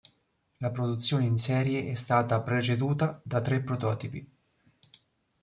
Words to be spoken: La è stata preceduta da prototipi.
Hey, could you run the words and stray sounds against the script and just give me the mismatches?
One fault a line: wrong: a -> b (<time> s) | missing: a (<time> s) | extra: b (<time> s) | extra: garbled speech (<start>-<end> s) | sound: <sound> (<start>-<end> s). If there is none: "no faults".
extra: produzione in serie (0.7 s)
extra: tre (3.4 s)